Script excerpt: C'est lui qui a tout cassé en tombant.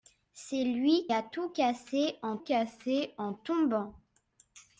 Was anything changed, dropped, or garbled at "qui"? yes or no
yes